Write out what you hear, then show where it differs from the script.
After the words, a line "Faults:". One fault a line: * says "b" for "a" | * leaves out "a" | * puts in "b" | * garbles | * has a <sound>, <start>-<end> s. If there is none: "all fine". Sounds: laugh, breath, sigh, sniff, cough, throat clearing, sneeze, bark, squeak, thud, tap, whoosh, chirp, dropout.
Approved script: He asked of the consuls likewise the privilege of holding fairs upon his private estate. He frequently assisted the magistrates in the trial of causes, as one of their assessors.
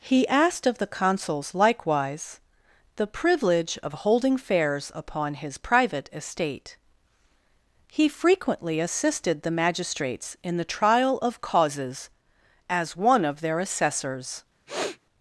He asked of the consuls likewise the privilege of holding fairs upon his private estate. He frequently assisted the magistrates in the trial of causes, as one of their assessors.
Faults:
* has a sniff, 14.7-15.0 s